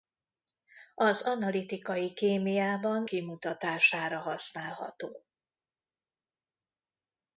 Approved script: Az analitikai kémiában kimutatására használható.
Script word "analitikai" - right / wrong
right